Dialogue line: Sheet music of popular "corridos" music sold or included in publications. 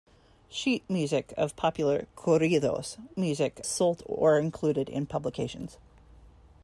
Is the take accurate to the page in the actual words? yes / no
yes